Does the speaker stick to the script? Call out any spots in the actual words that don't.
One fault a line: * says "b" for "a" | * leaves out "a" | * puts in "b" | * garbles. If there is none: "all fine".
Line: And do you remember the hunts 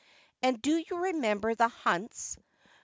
all fine